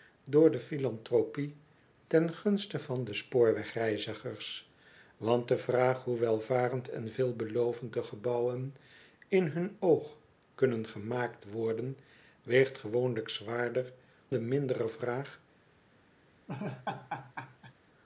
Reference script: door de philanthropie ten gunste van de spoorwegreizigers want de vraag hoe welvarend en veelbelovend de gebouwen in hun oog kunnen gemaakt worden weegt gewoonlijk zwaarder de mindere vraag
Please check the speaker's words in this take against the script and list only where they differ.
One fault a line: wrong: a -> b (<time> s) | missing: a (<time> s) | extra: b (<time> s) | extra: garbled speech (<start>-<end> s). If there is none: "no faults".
no faults